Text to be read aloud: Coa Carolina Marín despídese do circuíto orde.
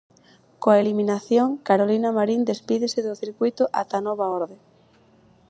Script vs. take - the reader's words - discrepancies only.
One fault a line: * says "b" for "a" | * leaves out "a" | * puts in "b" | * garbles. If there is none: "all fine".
* puts in "eliminación"
* puts in "ata nova"